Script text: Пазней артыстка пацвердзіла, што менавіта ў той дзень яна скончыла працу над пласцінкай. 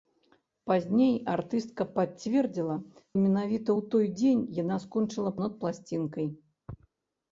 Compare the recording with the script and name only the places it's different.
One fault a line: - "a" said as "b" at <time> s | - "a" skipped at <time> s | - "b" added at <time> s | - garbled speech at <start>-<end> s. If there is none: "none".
- "што" skipped at 2.8 s
- "працу" skipped at 5.4 s